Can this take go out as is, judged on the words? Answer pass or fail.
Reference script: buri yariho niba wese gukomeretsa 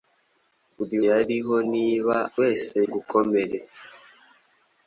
pass